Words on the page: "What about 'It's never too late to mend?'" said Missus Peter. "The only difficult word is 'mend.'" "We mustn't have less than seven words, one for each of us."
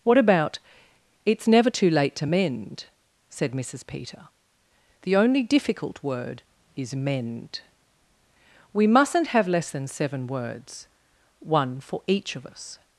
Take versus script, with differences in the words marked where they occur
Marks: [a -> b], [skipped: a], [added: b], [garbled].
"What about 'It's never too late to mend?'" said Missus Peter. "The only difficult word is 'mend.'" "We mustn't have less than seven words, one for each of us."